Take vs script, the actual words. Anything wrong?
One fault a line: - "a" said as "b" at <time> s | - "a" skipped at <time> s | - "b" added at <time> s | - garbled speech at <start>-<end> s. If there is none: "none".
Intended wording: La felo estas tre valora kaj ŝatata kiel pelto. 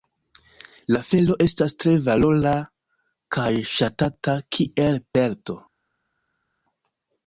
none